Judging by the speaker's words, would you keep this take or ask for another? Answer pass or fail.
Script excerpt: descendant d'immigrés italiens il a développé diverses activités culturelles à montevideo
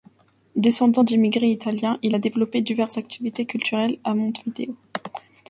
pass